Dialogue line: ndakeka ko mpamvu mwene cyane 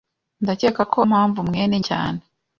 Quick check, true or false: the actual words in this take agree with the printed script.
true